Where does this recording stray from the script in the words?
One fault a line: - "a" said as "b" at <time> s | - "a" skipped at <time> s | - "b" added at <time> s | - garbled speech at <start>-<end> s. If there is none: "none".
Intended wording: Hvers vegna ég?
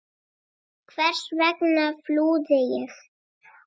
- "flúði" added at 2.1 s